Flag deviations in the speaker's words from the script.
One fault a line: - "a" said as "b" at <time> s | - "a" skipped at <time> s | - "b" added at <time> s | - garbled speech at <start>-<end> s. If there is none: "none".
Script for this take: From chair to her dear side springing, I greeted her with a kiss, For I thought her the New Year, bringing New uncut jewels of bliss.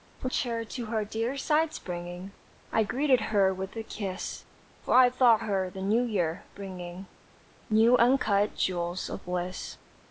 none